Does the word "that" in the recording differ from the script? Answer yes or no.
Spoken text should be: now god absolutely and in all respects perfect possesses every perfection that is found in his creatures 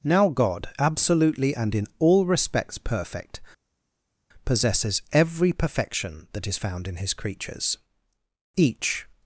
no